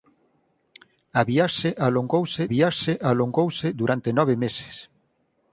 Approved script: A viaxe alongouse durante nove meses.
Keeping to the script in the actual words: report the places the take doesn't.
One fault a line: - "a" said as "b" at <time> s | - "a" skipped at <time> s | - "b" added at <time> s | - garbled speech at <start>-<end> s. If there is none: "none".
- "viaxe alongouse" added at 2.5 s